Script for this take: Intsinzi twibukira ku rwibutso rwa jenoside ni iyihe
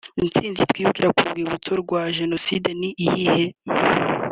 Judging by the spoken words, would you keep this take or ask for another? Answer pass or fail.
pass